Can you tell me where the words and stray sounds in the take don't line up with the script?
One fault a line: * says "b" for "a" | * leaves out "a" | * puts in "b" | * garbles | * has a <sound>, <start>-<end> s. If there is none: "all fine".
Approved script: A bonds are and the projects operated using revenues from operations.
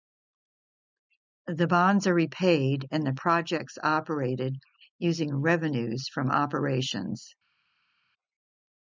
* says "The" for "A"
* puts in "repaid"